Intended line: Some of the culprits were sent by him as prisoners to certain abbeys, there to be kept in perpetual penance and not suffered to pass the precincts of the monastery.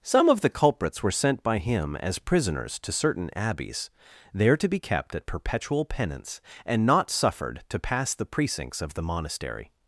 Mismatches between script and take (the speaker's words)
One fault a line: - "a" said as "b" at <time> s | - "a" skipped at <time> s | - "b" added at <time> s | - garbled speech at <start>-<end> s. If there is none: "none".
- "in" said as "at" at 5.1 s